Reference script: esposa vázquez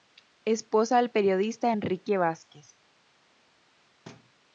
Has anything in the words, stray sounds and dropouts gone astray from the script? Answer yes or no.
yes